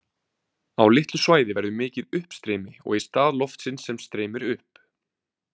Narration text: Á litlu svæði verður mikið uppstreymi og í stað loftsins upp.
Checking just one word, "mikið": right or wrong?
right